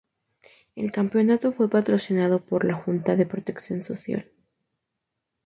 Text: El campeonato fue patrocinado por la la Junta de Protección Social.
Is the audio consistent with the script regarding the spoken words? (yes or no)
no